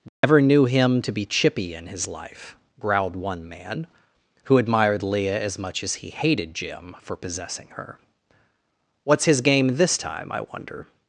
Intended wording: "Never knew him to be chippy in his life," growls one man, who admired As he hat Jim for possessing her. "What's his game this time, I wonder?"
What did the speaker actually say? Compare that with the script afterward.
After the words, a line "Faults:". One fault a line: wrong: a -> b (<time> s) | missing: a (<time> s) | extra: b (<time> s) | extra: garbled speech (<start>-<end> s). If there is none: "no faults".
"Never knew him to be chippy in his life," growled one man, who admired Leah as much as he hated Jim for possessing her. "What's his game this time, I wonder?"
Faults:
wrong: growls -> growled (2.8 s)
extra: Leah (5.0 s)
extra: much as (5.6 s)
wrong: hat -> hated (6.1 s)